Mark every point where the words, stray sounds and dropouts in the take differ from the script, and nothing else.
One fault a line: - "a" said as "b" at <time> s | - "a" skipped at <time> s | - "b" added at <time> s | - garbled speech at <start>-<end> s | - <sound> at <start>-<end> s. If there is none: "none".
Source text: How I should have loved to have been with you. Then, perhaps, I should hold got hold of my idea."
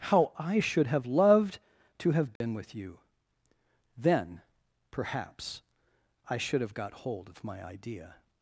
- dropout at 2.4-2.4 s
- "hold" said as "have" at 6.6 s